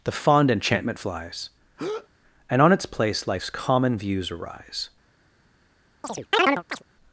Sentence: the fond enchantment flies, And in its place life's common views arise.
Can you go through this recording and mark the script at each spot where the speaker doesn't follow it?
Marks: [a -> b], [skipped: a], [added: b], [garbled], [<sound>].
the fond enchantment flies, [breath] And [in -> on] its place life's common views arise. [chirp]